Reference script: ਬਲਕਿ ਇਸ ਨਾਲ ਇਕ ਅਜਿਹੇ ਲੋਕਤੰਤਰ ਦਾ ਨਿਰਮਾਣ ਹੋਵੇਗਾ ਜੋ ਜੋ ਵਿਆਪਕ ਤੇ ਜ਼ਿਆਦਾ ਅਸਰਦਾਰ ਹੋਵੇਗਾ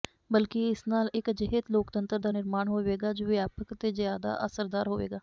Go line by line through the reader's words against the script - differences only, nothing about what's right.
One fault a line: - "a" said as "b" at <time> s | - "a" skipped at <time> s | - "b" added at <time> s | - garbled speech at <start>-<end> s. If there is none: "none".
- "ਜੋ" skipped at 3.3 s